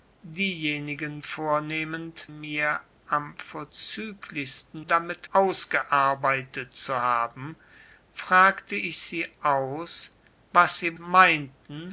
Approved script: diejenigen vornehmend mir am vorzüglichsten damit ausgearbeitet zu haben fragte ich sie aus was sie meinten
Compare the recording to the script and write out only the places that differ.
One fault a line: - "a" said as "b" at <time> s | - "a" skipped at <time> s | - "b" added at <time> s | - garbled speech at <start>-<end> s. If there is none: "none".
none